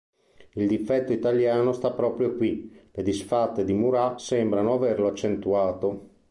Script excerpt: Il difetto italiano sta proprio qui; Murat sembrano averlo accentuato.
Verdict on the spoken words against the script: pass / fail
fail